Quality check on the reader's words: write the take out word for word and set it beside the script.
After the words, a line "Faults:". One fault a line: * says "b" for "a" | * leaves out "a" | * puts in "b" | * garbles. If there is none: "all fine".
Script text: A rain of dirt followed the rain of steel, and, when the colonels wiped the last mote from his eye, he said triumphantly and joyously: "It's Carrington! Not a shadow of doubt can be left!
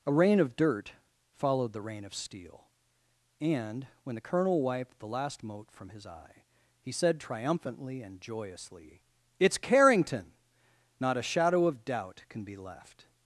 A rain of dirt followed the rain of steel, and, when the colonel wiped the last mote from his eye, he said triumphantly and joyously: "It's Carrington! Not a shadow of doubt can be left!
Faults:
* says "colonel" for "colonels"